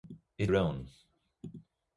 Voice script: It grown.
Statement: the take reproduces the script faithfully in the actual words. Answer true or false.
true